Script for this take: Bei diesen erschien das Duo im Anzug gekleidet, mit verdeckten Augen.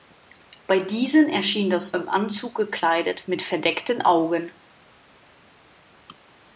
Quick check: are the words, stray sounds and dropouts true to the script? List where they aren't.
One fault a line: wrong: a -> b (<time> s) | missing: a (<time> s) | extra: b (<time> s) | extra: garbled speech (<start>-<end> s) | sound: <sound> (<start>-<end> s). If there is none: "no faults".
missing: Duo (1.9 s)